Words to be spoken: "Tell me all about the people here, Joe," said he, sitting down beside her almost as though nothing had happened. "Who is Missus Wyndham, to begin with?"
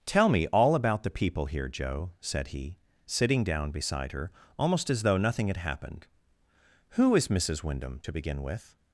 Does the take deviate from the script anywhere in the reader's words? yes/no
no